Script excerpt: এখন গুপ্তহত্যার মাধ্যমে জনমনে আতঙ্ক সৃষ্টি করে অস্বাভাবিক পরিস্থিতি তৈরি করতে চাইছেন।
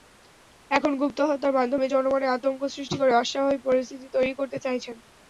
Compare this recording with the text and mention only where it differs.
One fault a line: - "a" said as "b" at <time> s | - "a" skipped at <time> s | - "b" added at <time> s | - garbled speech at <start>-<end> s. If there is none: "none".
none